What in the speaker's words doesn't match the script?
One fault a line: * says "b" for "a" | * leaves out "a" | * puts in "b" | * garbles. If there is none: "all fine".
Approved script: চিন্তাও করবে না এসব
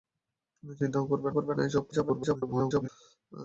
* puts in "করবে"
* garbles